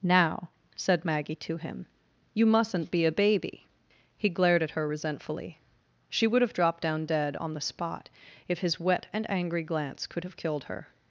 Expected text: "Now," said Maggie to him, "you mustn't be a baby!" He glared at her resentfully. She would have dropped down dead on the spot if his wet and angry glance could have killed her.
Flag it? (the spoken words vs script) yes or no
no